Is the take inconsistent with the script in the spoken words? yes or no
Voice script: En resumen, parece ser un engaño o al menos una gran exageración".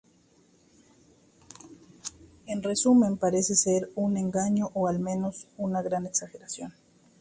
no